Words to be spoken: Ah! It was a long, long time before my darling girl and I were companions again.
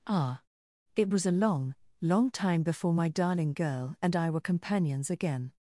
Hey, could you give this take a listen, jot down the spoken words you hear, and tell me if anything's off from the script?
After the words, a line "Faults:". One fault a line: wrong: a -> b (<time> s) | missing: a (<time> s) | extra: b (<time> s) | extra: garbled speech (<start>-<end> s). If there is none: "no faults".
Ah! It was a long, long time before my darling girl and I were companions again.
Faults:
no faults